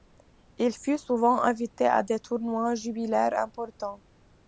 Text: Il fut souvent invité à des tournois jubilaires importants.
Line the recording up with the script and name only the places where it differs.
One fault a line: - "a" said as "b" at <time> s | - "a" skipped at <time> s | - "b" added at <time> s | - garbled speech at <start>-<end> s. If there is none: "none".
none